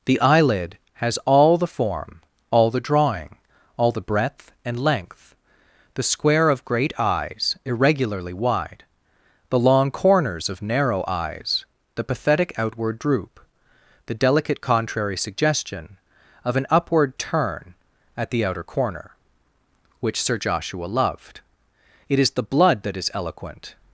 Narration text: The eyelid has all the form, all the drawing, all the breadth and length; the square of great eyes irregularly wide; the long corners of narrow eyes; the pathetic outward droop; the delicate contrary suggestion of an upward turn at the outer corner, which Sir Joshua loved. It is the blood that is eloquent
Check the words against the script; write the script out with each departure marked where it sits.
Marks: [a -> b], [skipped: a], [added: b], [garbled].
The eyelid has all the form, all the drawing, all the breadth and length; the square of great eyes irregularly wide; the long corners of narrow eyes; the pathetic outward droop; the delicate contrary suggestion of an upward turn at the outer corner, which Sir Joshua loved. It is the blood that is eloquent